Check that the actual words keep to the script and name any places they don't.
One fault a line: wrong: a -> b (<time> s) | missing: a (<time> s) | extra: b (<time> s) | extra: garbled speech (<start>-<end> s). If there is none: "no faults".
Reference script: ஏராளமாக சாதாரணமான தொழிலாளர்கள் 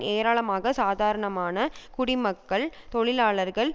extra: குடிமக்கள் (1.9 s)